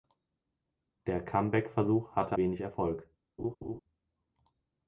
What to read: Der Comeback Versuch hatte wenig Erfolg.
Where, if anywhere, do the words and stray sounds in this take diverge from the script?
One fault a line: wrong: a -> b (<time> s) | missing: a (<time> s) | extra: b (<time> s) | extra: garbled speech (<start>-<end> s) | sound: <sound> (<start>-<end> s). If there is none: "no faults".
sound: laugh (3.4-3.8 s)